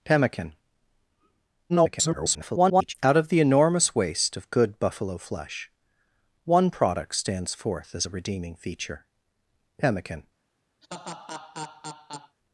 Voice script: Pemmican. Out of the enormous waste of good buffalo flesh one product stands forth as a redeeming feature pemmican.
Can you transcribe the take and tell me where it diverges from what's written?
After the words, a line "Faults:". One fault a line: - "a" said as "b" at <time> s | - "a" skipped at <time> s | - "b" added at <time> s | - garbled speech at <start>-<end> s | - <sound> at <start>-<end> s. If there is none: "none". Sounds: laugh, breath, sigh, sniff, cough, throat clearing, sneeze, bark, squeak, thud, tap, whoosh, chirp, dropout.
Pemmican. [garbled] Out of the enormous waste of good buffalo flesh one product stands forth as a redeeming feature pemmican.
Faults:
- garbled speech at 1.7-2.9 s
- laugh at 10.8-12.4 s